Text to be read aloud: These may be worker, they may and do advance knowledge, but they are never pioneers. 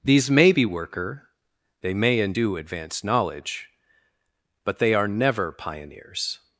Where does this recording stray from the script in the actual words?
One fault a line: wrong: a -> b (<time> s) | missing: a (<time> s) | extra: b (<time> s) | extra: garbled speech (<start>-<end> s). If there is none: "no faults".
no faults